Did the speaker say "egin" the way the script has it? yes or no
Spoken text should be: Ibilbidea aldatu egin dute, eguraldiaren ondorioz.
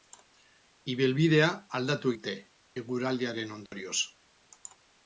no